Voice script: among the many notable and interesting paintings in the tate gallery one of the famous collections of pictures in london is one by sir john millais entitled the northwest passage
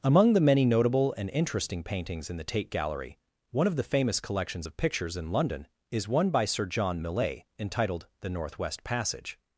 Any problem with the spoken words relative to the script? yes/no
no